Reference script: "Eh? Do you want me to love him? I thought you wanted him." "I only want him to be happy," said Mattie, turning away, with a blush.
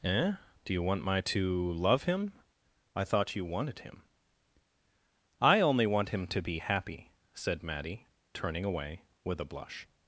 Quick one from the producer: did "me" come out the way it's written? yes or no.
no